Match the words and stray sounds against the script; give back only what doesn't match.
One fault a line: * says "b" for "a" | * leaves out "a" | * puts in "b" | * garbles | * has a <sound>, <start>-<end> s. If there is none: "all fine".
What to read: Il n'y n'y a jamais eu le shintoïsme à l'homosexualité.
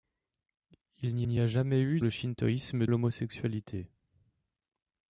all fine